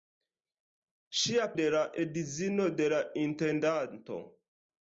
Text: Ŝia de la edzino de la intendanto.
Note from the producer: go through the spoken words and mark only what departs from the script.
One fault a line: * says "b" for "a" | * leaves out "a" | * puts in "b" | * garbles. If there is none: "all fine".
all fine